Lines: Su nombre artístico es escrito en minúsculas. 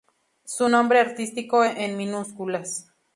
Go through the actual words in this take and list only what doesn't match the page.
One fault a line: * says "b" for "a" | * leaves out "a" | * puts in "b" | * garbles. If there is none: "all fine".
* leaves out "es escrito"